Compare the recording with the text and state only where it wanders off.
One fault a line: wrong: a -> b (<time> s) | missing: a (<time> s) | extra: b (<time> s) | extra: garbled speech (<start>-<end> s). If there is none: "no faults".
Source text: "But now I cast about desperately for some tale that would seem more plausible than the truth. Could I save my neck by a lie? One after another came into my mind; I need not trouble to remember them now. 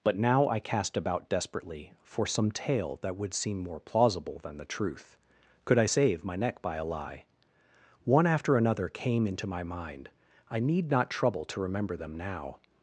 no faults